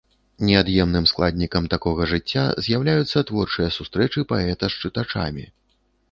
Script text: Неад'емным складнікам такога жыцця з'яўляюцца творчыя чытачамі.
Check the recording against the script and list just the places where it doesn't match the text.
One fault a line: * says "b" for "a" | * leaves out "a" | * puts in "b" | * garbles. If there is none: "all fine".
* puts in "сустрэчы паэта з"